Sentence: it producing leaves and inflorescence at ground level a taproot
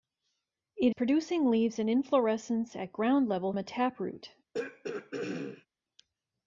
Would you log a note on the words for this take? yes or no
no